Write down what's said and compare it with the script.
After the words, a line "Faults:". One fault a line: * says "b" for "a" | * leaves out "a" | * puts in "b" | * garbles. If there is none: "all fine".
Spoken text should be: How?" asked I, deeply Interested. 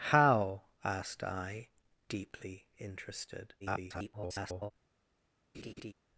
How?" asked I, deeply Interested. [garbled]
Faults:
* garbles